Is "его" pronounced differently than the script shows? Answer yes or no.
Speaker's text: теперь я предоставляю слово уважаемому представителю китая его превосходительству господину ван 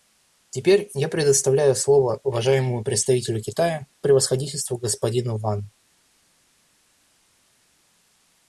yes